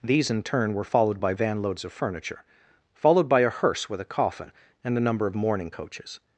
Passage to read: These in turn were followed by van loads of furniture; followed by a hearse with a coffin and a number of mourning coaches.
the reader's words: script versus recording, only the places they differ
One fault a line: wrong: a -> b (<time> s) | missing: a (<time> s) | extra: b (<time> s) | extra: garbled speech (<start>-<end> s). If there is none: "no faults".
no faults